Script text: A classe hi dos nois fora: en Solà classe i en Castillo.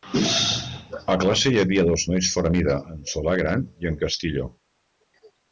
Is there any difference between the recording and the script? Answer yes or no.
yes